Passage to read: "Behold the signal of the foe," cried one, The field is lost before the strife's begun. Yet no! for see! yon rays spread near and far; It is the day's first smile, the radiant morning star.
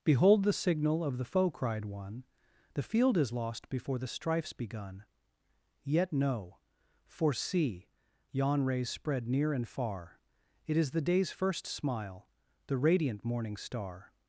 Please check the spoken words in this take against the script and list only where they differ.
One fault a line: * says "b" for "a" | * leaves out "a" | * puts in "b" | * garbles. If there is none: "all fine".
all fine